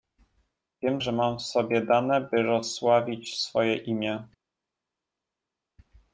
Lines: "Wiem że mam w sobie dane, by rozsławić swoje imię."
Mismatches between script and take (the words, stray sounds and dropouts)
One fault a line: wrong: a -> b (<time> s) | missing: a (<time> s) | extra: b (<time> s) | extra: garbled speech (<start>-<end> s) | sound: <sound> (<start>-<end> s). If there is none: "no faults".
no faults